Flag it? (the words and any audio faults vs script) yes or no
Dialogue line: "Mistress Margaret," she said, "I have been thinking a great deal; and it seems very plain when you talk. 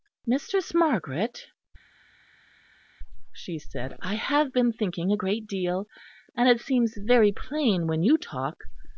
no